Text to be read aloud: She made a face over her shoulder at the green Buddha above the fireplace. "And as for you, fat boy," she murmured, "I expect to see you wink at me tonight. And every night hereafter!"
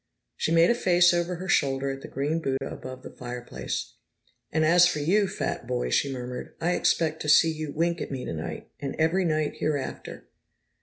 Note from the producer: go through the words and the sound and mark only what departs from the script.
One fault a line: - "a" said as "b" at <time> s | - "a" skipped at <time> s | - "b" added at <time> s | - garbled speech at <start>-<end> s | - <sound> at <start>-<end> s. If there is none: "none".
- dropout at 2.6-2.6 s